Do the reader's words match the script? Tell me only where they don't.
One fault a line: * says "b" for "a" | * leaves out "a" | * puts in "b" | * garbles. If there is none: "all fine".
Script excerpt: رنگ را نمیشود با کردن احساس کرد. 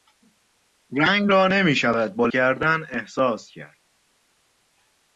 all fine